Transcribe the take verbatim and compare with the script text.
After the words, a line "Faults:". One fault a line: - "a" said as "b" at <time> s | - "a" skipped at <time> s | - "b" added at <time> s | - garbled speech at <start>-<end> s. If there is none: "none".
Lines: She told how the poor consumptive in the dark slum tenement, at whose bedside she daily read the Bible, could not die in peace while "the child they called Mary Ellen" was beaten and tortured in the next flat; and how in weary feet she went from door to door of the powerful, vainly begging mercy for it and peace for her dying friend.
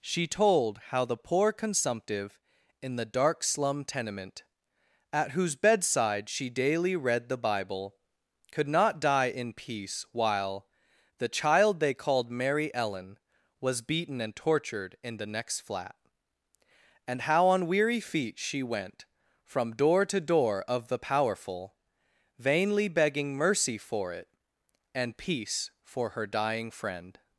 She told how the poor consumptive in the dark slum tenement, at whose bedside she daily read the Bible, could not die in peace while "the child they called Mary Ellen" was beaten and tortured in the next flat; and how on weary feet she went from door to door of the powerful, vainly begging mercy for it and peace for her dying friend.
Faults:
- "in" said as "on" at 17.4 s